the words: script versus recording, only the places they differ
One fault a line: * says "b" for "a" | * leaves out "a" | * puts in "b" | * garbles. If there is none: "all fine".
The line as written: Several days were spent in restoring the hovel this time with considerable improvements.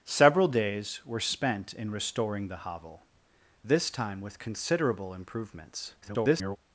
* garbles